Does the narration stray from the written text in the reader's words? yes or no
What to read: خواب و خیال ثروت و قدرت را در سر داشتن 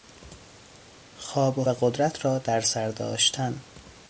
yes